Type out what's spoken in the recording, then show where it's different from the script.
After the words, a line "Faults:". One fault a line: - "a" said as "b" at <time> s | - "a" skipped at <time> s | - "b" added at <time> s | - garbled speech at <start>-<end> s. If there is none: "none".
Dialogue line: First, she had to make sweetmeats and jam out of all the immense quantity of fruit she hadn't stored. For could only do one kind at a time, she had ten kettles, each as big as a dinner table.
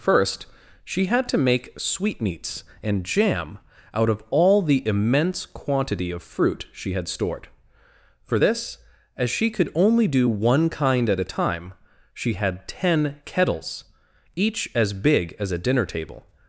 First, she had to make sweetmeats and jam out of all the immense quantity of fruit she had stored. For this, as she could only do one kind at a time, she had ten kettles, each as big as a dinner table.
Faults:
- "hadn't" said as "had" at 6.9 s
- "this as she" added at 8.4 s